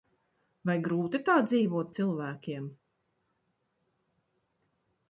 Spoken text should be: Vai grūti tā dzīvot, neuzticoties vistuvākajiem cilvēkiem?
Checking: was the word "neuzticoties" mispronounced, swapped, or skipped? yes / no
yes